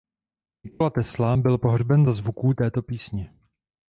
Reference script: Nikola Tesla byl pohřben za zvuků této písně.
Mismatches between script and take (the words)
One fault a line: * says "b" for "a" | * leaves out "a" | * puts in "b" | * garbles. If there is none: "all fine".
all fine